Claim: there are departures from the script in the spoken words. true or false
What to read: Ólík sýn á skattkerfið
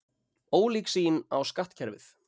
false